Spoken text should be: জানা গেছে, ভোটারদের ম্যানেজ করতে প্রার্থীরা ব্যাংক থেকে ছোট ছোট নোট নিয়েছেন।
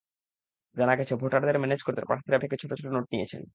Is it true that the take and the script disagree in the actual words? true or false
true